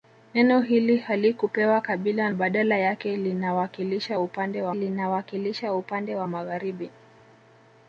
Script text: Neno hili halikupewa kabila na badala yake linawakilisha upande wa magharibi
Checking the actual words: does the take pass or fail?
fail